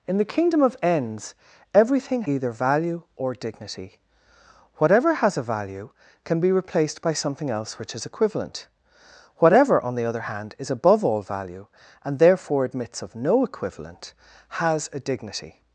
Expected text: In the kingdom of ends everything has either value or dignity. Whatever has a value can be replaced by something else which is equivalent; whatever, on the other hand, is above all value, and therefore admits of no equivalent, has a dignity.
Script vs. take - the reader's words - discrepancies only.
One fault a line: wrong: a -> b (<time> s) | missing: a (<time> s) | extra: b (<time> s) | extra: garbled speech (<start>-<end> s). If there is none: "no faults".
missing: has (2.2 s)